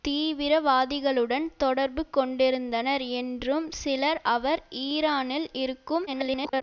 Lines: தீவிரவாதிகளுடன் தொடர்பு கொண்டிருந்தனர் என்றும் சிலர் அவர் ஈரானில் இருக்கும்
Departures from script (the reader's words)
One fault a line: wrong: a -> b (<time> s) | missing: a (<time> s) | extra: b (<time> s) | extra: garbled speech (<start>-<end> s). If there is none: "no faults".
extra: garbled speech (6.1-6.6 s)